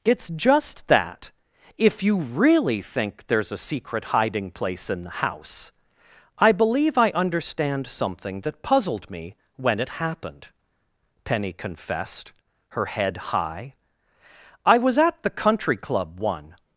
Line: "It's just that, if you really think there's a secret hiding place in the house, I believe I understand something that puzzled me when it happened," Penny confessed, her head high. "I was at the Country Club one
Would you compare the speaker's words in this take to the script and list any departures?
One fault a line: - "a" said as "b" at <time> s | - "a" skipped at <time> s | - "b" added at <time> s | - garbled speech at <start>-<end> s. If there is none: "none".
none